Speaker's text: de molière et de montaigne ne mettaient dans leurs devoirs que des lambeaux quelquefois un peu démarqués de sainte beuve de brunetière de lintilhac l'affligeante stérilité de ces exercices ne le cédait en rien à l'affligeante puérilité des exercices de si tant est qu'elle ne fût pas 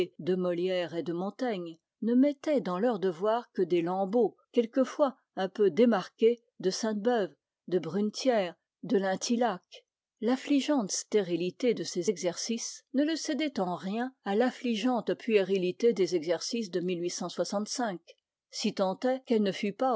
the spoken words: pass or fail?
pass